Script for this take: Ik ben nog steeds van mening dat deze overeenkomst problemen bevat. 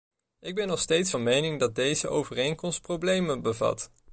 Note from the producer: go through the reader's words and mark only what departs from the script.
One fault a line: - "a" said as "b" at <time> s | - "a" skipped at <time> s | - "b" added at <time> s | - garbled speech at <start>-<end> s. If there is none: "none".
none